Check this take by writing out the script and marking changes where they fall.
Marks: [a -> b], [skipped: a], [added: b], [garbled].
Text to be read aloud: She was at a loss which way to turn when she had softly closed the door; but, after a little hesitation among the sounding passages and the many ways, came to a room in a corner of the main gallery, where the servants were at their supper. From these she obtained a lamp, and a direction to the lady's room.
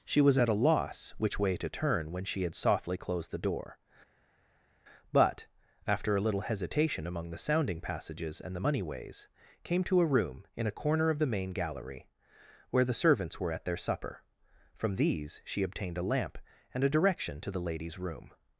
She was at a loss which way to turn when she had softly closed the door; but, after a little hesitation among the sounding passages and the [many -> money] ways, came to a room in a corner of the main gallery, where the servants were at their supper. From these she obtained a lamp, and a direction to the lady's room.